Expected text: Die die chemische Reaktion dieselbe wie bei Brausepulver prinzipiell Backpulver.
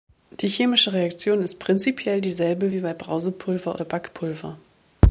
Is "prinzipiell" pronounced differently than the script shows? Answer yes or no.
yes